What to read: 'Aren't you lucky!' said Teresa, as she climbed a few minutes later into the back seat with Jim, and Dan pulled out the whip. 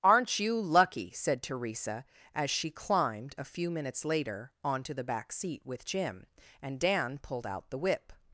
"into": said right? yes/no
no